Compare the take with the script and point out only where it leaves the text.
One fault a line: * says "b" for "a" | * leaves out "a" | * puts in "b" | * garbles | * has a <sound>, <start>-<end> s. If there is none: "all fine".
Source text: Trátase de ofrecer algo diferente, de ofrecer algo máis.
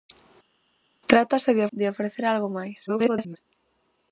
* leaves out "ofrecer algo diferente"
* garbles